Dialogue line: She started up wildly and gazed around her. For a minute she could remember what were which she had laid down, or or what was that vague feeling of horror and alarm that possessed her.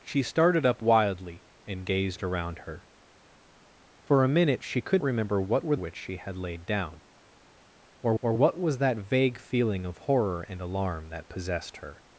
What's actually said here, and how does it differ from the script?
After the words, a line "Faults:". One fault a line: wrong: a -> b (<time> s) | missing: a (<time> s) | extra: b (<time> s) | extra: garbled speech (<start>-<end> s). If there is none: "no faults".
She started up wildly and gazed around her. For a minute she could remember what were which she had laid down, or or what was that vague feeling of horror and alarm that possessed her.
Faults:
no faults